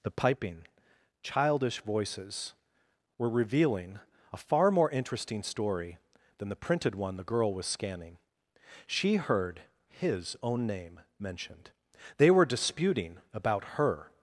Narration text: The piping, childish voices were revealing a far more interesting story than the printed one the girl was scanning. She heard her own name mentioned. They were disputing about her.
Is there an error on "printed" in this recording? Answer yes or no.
no